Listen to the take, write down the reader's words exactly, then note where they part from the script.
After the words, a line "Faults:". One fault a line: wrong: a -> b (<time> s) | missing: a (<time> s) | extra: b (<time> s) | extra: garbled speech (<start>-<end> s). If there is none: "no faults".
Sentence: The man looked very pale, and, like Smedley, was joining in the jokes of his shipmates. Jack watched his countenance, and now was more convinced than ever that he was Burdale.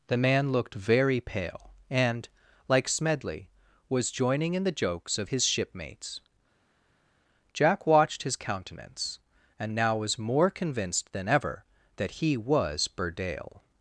The man looked very pale, and, like Smedley, was joining in the jokes of his shipmates. Jack watched his countenance, and now was more convinced than ever that he was Burdale.
Faults:
no faults